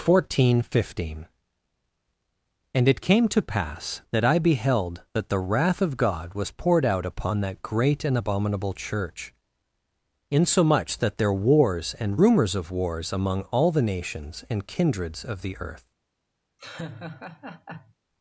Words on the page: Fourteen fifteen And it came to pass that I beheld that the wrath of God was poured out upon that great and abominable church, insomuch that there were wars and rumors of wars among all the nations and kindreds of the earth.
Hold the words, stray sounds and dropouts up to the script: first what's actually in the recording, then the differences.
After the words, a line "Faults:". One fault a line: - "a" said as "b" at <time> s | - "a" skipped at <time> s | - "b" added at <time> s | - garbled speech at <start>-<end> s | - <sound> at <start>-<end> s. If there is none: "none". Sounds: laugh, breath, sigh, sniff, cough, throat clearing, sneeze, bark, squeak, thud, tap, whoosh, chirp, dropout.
Fourteen fifteen And it came to pass that I beheld that the wrath of God was poured out upon that great and abominable church, insomuch that there wars and rumors of wars among all the nations and kindreds of the earth.
Faults:
- "were" skipped at 11.3 s
- laugh at 16.6-17.9 s